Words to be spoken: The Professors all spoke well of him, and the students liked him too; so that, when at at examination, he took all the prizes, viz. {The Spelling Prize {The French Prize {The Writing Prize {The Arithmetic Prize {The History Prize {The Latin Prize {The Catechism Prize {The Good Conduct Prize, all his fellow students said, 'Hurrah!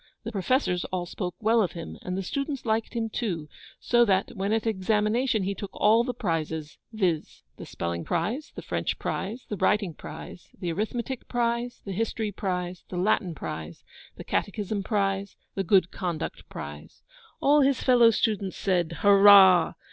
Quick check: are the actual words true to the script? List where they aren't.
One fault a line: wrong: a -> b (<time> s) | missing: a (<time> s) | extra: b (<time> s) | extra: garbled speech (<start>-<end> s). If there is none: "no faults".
missing: at (4.6 s)